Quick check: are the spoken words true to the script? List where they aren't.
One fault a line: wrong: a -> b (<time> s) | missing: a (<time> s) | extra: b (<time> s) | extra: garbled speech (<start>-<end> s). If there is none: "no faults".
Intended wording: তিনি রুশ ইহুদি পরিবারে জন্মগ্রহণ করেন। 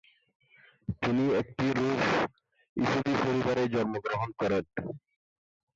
extra: একটি (1.4 s)